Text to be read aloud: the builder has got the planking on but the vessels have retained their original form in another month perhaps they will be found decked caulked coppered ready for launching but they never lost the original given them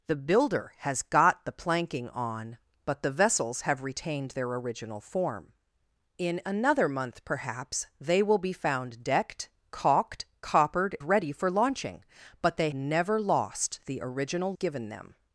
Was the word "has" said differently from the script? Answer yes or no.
no